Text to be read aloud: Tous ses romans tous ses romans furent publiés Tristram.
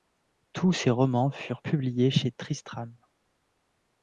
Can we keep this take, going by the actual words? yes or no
no